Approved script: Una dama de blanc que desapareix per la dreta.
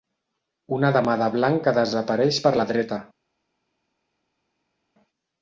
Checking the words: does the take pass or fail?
pass